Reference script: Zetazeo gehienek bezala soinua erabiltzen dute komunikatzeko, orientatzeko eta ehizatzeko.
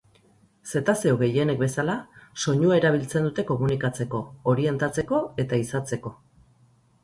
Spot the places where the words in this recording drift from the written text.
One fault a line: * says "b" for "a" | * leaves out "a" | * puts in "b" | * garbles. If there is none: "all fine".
all fine